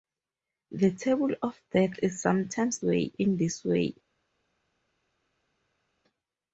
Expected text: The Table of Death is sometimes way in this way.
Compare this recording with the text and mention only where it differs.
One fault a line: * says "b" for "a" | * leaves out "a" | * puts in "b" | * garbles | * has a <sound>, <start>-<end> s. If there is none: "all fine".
all fine